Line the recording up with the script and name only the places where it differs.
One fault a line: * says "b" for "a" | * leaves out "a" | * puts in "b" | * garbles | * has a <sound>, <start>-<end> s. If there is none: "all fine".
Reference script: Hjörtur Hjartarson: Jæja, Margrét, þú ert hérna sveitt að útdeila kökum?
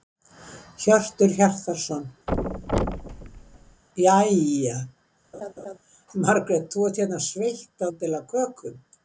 * has a thud, 2.3-3.8 s
* has a laugh, 5.3-5.8 s
* leaves out "að"